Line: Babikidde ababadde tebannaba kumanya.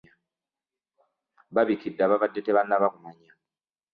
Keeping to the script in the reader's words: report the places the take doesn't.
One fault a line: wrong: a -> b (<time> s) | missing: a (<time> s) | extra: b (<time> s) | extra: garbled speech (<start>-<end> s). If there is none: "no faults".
no faults